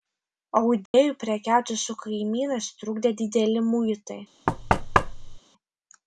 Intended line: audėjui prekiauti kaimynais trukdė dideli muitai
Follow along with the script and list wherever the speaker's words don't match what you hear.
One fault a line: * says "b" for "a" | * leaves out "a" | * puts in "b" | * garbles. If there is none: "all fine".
* puts in "su"